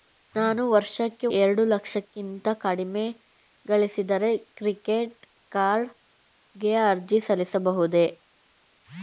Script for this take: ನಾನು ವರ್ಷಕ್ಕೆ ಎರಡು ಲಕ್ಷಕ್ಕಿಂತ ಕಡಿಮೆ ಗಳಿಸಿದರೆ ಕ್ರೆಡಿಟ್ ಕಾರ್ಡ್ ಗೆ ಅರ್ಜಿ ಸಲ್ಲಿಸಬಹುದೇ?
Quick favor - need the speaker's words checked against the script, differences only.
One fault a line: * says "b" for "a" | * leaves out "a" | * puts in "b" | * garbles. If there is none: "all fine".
all fine